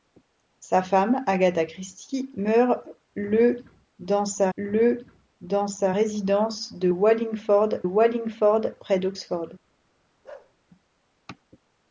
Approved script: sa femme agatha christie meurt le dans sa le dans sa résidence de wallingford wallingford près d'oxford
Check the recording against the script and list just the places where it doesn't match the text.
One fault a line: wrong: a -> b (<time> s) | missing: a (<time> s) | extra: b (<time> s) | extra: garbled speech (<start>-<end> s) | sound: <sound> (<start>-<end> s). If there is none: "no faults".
sound: bark (10.2-10.5 s)